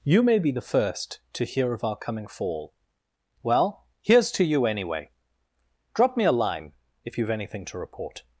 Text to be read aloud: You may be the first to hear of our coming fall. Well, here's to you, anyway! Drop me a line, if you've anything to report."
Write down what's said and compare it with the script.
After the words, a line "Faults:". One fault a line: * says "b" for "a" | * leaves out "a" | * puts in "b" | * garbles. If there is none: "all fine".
You may be the first to hear of our coming fall. Well, here's to you, anyway! Drop me a line, if you've anything to report."
Faults:
all fine